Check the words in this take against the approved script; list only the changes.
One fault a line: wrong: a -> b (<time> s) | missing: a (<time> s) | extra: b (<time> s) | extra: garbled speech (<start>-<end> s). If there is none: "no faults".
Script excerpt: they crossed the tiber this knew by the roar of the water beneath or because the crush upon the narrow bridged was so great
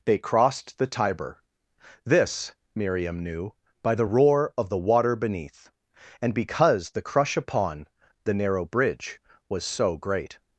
extra: miriam (2.8 s)
wrong: or -> and (6.2 s)
wrong: bridged -> bridge (8.7 s)